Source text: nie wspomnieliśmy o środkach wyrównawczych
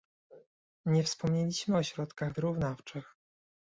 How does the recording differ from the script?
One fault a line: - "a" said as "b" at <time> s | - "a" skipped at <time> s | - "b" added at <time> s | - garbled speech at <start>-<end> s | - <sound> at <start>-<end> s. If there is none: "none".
none